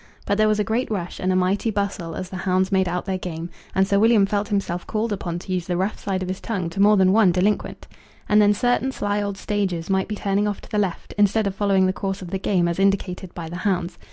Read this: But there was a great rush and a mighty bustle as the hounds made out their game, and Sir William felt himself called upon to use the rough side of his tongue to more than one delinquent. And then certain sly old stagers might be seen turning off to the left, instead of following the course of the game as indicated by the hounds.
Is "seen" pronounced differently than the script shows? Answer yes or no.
yes